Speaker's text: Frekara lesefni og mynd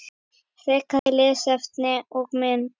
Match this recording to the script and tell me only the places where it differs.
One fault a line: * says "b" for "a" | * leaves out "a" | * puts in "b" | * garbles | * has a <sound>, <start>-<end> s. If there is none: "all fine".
* has a dropout, 1.0-1.1 s